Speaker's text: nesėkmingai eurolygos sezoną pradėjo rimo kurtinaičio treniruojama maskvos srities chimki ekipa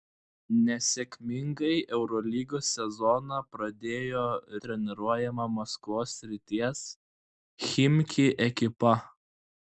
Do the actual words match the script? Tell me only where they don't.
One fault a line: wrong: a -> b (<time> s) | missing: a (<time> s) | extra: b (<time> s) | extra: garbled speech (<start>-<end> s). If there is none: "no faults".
missing: rimo kurtinaičio (4.2 s)